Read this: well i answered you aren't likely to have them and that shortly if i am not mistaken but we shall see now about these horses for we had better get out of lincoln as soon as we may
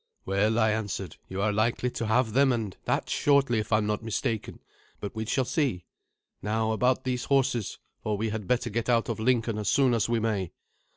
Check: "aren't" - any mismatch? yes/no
yes